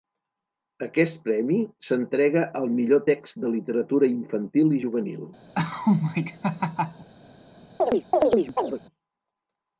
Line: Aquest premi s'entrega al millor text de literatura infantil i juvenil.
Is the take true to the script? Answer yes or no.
yes